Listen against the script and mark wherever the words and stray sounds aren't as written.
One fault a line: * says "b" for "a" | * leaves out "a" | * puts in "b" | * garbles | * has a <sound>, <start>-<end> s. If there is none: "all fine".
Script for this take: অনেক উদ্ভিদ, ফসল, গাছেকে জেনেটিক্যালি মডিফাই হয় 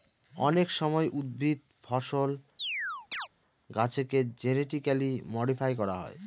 * puts in "সময়"
* has a chirp, 2.6-3.3 s
* puts in "করা"